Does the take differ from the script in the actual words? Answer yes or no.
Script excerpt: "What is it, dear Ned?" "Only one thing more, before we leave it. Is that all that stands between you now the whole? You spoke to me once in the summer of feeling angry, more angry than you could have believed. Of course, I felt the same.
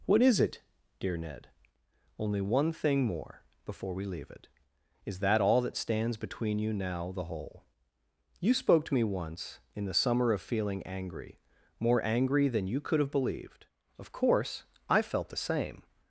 no